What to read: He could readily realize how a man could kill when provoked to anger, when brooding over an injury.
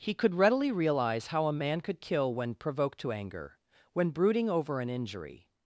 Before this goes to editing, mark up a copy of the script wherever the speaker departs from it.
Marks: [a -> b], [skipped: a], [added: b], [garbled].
He could readily realize how a man could kill when provoked to anger, when brooding over an injury.